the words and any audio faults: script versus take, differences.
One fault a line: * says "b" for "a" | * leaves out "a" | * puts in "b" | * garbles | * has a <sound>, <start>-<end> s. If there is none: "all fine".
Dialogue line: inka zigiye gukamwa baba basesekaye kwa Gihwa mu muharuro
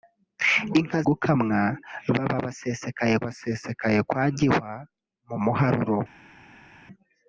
* leaves out "zigiye"
* puts in "basesekaye"